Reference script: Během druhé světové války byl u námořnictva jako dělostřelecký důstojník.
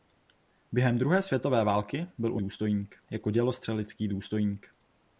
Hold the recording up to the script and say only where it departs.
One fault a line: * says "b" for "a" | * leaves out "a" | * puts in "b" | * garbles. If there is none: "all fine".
* says "důstojník" for "námořnictva"